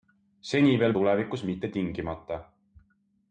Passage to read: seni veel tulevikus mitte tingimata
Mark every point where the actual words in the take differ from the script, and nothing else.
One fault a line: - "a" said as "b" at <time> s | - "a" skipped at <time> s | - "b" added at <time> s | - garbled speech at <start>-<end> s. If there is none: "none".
none